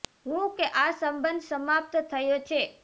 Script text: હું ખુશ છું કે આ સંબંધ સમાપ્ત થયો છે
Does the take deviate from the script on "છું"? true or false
true